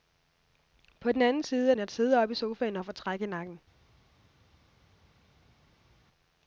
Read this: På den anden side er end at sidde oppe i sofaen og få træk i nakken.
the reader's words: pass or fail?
pass